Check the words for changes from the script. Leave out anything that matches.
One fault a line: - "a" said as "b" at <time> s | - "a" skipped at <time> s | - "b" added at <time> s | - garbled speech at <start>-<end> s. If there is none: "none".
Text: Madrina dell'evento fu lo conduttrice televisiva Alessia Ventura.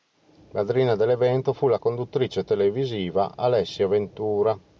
- "lo" said as "la" at 1.7 s